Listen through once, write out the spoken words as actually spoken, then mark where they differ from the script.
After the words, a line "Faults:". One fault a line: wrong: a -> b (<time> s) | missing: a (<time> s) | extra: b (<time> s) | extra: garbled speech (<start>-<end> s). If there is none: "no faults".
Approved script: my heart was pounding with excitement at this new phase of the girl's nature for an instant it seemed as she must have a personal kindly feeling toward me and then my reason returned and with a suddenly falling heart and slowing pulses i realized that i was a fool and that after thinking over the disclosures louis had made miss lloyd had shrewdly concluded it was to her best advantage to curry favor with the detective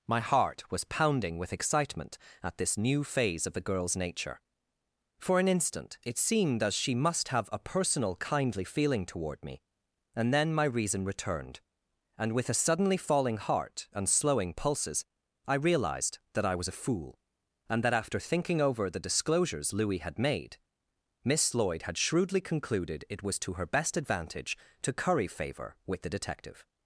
my heart was pounding with excitement at this new phase of the girl's nature for an instant it seemed as she must have a personal kindly feeling toward me and then my reason returned and with a suddenly falling heart and slowing pulses i realized that i was a fool and that after thinking over the disclosures louis had made miss lloyd had shrewdly concluded it was to her best advantage to curry favor with the detective
Faults:
no faults